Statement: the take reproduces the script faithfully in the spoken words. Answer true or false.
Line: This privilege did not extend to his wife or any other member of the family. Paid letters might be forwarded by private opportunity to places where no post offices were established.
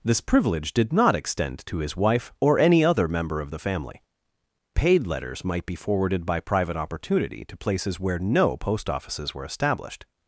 true